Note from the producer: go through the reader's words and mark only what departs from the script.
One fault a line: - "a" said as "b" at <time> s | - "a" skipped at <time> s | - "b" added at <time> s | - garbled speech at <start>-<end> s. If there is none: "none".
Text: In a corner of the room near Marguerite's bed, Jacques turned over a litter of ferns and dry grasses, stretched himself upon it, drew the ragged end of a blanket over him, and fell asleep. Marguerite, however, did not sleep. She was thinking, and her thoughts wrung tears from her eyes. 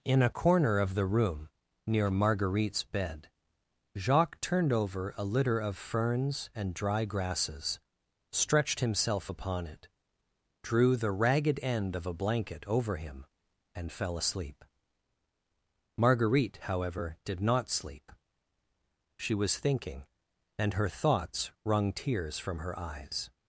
none